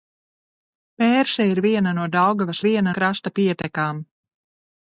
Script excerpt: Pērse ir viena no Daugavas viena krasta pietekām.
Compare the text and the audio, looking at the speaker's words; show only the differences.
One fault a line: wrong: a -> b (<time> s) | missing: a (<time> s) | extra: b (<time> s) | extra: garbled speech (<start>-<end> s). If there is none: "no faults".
no faults